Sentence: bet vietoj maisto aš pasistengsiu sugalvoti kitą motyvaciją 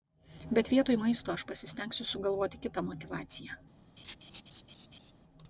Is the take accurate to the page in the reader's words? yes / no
yes